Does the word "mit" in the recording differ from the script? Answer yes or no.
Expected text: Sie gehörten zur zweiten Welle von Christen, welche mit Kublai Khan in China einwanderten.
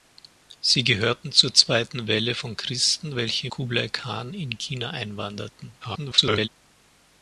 yes